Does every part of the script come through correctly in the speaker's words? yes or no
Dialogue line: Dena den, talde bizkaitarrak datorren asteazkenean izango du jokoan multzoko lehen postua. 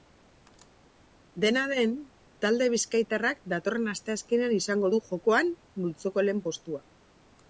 yes